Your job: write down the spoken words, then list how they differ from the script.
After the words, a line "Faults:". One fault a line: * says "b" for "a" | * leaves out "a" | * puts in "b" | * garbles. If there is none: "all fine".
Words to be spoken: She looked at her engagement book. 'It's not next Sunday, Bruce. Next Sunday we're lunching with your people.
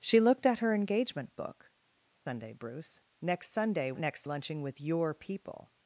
She looked at her engagement book. 'Sunday, Bruce. Next Sunday next lunching with your people.
Faults:
* leaves out "It's not next"
* says "next" for "we're"